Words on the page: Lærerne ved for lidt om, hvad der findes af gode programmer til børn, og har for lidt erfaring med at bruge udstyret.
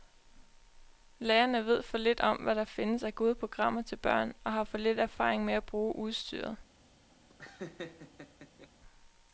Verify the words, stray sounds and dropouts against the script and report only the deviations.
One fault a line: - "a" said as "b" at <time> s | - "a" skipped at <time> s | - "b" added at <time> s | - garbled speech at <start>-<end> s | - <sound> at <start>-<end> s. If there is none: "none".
- laugh at 7.3-8.7 s